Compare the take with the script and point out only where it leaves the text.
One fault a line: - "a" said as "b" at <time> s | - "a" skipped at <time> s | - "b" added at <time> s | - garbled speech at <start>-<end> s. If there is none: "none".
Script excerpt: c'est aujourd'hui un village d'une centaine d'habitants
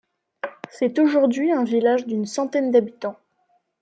none